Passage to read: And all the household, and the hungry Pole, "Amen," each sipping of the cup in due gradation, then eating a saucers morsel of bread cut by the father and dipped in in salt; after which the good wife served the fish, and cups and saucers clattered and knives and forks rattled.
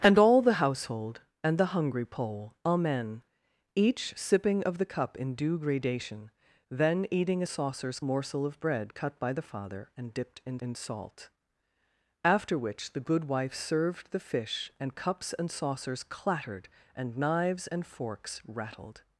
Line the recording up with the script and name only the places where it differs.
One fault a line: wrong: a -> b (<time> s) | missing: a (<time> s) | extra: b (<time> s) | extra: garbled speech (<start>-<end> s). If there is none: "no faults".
no faults